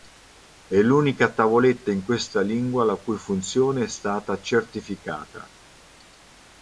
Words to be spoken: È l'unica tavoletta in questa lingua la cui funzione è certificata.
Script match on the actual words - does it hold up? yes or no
no